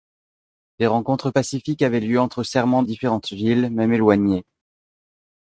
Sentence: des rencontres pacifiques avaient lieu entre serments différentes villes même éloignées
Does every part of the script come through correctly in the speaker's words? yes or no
yes